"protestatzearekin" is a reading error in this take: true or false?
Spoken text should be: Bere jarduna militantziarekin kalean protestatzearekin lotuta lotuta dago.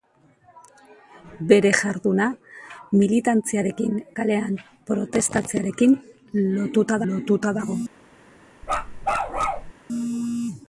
false